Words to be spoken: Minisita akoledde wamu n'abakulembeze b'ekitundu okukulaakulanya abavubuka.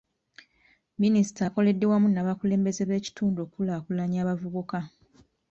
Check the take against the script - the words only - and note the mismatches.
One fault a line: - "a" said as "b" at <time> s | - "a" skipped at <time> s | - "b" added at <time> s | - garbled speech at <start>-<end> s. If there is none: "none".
none